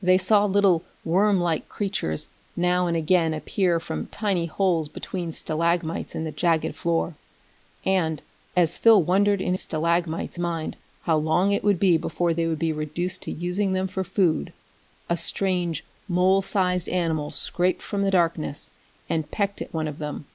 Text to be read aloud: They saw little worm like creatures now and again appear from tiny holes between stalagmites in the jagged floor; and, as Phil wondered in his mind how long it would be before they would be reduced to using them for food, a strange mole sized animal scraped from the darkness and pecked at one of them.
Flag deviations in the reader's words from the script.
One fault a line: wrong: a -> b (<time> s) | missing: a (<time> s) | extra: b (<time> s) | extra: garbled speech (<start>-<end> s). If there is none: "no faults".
wrong: his -> stalagmites (9.5 s)